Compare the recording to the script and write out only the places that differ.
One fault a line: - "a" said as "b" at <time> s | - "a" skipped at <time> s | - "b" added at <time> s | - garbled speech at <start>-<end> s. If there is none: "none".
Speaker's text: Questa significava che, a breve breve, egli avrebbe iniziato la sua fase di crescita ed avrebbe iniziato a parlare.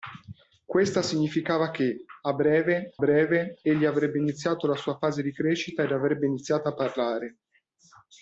none